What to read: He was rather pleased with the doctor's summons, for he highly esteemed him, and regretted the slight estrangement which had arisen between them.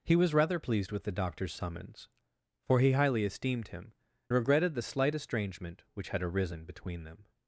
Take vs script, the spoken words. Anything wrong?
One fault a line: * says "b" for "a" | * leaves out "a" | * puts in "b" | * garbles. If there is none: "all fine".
* leaves out "and"